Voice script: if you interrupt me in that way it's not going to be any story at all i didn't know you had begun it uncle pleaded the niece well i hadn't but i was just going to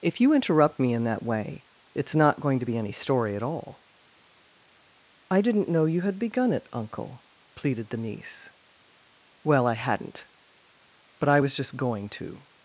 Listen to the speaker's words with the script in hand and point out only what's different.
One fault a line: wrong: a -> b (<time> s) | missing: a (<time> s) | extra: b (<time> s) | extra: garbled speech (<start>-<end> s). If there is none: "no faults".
no faults